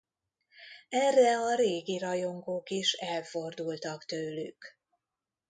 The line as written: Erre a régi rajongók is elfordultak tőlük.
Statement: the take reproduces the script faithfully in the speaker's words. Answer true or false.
true